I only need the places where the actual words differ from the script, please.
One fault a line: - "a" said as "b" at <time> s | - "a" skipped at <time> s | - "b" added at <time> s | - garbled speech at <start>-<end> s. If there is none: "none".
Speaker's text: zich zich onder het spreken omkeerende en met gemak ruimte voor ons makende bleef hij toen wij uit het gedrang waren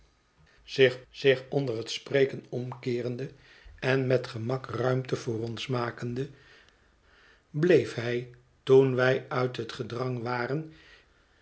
none